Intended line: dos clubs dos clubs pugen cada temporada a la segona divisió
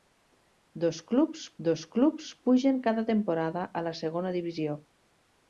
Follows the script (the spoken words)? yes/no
yes